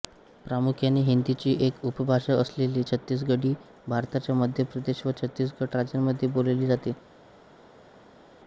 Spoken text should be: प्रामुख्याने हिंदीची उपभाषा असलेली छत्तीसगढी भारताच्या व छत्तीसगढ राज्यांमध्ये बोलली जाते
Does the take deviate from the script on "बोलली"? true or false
false